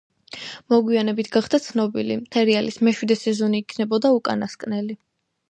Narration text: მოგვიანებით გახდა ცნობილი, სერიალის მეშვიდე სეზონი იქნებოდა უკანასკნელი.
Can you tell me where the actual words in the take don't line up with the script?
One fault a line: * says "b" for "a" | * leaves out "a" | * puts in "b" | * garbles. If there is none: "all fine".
all fine